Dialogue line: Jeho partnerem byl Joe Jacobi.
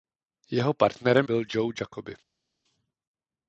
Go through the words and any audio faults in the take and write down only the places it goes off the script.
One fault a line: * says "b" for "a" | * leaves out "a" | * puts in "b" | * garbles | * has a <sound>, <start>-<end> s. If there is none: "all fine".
all fine